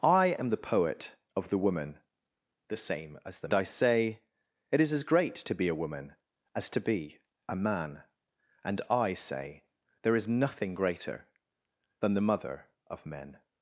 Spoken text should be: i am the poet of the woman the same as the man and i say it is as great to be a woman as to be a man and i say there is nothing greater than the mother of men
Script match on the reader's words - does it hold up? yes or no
no